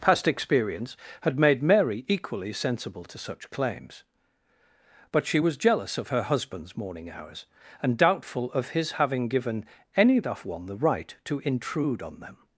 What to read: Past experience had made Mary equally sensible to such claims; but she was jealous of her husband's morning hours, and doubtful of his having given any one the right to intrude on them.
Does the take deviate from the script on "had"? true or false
false